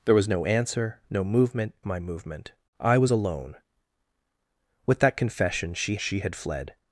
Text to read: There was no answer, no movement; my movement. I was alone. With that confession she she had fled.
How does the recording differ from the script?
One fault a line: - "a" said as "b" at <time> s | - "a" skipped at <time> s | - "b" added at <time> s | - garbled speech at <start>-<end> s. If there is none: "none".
none